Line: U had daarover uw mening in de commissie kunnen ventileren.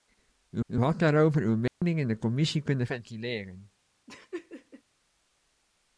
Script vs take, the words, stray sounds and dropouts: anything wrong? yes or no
yes